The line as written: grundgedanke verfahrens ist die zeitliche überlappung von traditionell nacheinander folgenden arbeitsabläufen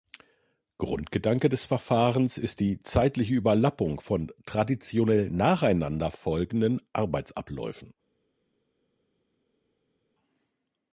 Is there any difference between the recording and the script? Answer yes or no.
yes